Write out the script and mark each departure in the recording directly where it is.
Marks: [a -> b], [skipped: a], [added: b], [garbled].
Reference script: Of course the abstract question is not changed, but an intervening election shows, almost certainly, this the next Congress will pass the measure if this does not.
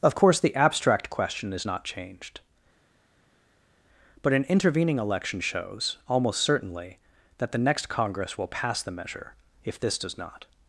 Of course the abstract question is not changed, but an intervening election shows, almost certainly, [this -> that] the next Congress will pass the measure if this does not.